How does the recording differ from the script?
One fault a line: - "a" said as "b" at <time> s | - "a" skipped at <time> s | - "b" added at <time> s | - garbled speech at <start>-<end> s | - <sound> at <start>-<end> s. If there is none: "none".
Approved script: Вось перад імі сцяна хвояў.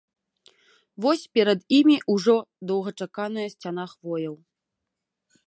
- "ўжо доўгачаканая" added at 2.1 s